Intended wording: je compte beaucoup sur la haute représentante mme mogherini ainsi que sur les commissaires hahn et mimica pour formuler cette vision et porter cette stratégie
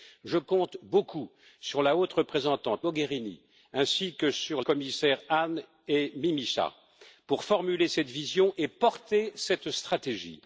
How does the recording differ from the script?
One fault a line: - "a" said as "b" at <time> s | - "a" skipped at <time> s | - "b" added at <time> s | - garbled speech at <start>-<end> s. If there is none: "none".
- "mme" skipped at 2.9 s
- "les" skipped at 4.6 s